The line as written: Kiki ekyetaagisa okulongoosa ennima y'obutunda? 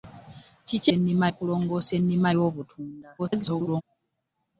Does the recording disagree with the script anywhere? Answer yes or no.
yes